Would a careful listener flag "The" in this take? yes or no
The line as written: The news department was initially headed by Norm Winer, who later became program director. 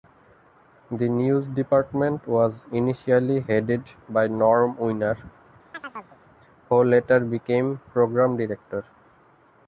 no